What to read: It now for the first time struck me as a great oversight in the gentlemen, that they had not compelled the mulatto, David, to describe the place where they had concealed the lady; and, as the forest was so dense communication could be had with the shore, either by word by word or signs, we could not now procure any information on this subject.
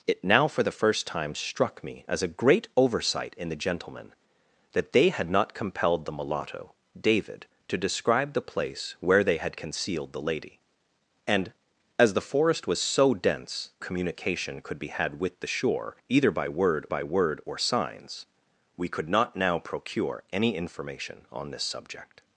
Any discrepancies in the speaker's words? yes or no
no